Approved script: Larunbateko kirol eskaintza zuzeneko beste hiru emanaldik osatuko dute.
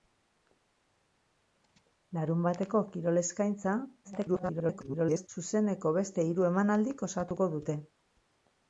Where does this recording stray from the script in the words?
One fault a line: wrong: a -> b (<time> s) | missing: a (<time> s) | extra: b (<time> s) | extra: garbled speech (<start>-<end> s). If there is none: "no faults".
extra: garbled speech (4.0-5.3 s)